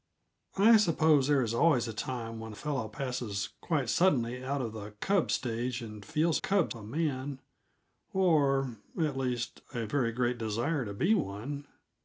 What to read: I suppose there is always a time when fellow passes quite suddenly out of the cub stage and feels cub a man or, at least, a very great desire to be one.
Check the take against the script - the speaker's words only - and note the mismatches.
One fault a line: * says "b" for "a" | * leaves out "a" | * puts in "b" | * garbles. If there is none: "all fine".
all fine